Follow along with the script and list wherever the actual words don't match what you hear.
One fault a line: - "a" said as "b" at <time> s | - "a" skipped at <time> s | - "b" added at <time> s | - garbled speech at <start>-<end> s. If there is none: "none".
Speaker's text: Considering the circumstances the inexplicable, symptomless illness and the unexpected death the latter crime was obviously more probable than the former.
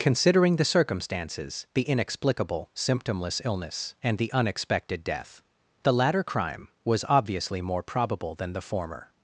none